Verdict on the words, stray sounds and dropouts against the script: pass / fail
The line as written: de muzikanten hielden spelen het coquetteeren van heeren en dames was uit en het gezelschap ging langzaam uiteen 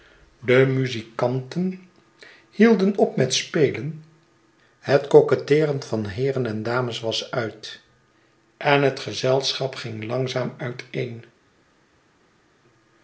fail